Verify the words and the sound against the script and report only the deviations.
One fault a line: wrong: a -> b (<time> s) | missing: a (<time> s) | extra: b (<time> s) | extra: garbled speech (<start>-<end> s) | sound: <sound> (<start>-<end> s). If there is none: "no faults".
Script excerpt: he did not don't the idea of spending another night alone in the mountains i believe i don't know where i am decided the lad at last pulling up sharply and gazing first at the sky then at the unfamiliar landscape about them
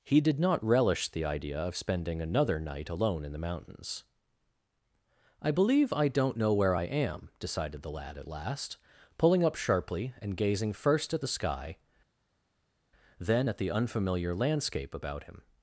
wrong: don't -> relish (0.6 s)
wrong: them -> him (15.2 s)